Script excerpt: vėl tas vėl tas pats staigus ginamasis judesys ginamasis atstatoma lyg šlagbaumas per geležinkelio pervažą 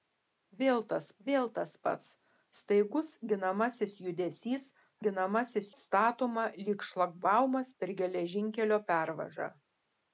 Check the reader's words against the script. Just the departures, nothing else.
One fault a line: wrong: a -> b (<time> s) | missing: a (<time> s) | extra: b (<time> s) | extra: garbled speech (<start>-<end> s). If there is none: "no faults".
no faults